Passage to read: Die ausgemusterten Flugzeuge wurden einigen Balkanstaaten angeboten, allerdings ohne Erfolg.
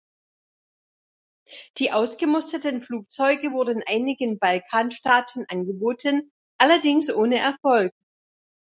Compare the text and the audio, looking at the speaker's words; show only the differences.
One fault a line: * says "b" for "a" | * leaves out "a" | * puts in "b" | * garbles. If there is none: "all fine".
all fine